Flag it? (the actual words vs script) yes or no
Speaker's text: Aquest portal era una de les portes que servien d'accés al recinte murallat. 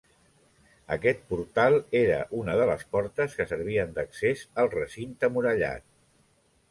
no